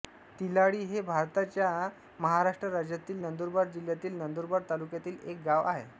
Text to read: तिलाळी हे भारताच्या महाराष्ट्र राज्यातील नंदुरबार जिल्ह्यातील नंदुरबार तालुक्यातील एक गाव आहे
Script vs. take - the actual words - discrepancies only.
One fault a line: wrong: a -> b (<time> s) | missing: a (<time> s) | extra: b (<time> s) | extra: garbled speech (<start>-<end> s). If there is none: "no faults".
no faults